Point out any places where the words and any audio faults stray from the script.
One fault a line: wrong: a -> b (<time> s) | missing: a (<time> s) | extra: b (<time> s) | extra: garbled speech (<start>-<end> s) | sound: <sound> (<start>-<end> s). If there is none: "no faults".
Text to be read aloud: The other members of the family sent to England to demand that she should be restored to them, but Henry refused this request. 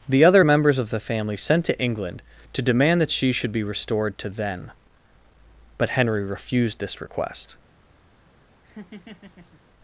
wrong: them -> then (4.3 s)
sound: laugh (8.6-9.6 s)